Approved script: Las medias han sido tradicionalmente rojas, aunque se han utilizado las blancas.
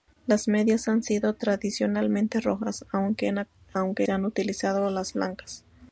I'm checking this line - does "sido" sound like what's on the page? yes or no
yes